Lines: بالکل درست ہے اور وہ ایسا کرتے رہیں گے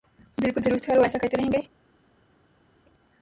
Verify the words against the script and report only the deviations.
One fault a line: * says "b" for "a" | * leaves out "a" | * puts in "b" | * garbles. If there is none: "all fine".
all fine